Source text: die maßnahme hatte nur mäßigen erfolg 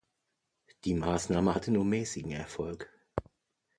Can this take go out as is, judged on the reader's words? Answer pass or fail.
pass